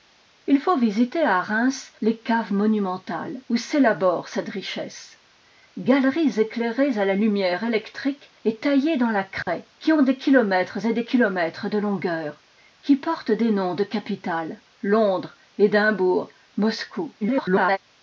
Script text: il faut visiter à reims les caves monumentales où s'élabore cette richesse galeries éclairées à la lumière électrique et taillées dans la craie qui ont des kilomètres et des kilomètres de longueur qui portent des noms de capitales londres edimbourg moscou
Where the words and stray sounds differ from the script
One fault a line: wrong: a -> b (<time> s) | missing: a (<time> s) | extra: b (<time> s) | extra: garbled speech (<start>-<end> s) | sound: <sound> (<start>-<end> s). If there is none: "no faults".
sound: dropout (9.4-9.5 s)
extra: garbled speech (17.2-17.8 s)